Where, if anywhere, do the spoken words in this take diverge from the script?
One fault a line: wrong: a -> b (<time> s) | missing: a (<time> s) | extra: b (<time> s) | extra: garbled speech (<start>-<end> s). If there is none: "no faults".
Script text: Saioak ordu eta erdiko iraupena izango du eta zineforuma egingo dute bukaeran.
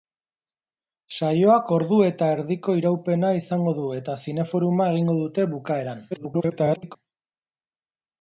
extra: garbled speech (6.1-7.0 s)